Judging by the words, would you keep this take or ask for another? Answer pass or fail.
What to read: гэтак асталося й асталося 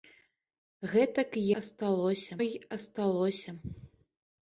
pass